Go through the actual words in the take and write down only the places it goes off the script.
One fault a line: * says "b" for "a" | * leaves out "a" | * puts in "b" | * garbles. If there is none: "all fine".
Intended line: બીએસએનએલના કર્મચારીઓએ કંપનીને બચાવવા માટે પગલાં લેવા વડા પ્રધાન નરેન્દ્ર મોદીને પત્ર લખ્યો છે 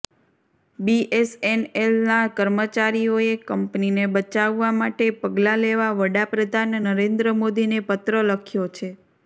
all fine